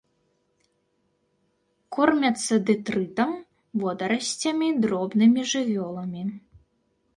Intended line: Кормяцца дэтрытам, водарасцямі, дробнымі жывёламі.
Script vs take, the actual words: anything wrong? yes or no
no